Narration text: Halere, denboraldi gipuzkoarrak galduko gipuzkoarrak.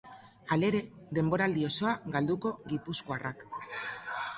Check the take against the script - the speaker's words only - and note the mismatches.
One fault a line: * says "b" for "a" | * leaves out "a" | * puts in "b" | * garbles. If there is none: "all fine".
* says "osoa" for "gipuzkoarrak"